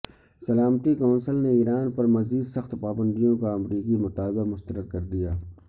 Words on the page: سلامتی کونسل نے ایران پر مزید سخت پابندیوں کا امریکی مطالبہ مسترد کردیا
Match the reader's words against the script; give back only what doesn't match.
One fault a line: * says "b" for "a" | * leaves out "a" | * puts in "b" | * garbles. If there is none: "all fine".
all fine